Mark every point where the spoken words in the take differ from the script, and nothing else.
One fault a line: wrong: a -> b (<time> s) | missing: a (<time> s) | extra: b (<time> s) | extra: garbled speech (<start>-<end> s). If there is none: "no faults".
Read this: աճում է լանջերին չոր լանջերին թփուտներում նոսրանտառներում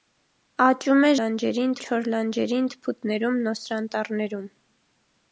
no faults